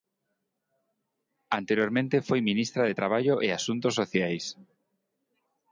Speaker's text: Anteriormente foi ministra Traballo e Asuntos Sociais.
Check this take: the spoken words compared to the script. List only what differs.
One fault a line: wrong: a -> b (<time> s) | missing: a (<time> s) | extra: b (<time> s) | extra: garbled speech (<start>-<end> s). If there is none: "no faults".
extra: de (2.9 s)